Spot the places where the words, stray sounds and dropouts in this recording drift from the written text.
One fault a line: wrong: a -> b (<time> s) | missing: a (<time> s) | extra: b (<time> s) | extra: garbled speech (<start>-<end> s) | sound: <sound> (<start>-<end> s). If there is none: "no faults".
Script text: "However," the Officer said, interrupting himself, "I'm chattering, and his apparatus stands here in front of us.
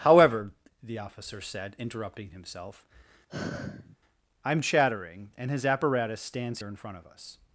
sound: sigh (3.3-4.0 s)